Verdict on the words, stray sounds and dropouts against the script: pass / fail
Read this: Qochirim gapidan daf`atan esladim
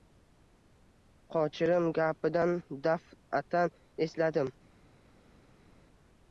pass